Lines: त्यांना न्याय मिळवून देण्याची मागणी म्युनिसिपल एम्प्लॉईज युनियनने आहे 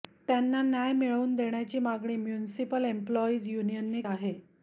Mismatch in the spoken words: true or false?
false